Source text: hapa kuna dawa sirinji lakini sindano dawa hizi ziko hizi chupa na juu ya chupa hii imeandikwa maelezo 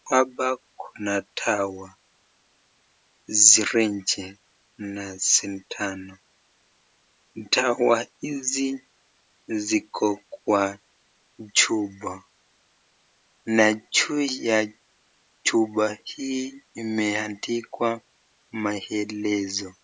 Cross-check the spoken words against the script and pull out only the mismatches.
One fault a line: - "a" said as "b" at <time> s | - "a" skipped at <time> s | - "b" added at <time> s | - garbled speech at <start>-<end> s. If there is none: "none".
- "lakini" said as "na" at 4.8 s
- "hizi" said as "kwa" at 10.3 s